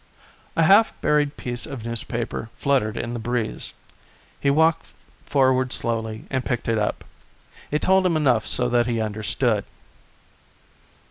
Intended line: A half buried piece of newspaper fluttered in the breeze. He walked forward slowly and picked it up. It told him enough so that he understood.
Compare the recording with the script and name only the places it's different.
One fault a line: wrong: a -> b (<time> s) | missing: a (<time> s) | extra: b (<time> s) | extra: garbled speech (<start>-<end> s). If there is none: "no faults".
no faults